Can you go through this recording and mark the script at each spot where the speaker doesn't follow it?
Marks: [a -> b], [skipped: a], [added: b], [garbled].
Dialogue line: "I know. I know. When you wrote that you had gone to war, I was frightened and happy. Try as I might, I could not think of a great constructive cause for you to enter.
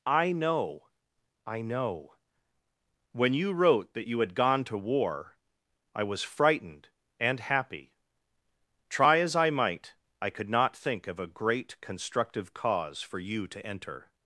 "I know. I know. When you wrote that you had gone to war, I was frightened and happy. Try as I might, I could not think of a great constructive cause for you to enter.